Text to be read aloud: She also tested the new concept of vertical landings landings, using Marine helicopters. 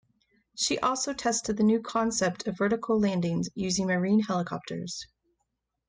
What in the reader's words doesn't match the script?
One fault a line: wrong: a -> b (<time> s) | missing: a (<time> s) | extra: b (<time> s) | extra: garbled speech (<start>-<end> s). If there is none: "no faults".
missing: landings (3.5 s)